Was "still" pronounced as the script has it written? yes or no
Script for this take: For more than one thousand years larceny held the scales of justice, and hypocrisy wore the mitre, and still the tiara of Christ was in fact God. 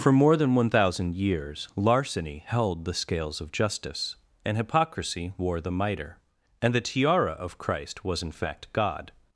no